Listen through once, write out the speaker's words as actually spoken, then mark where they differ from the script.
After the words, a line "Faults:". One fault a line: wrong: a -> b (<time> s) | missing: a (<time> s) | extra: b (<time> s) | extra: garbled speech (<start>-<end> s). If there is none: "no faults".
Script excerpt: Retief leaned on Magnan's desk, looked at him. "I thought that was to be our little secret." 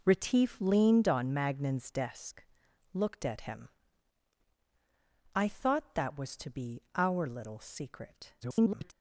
Retief leaned on Magnan's desk, looked at him. "I thought that was to be our little secret." [garbled]
Faults:
extra: garbled speech (8.4-8.9 s)